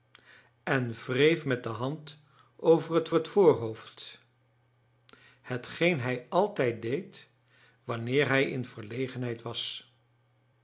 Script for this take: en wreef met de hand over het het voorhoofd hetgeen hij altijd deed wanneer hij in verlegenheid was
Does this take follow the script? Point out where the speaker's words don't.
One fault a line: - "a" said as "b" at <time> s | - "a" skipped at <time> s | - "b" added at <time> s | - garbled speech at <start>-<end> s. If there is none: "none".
none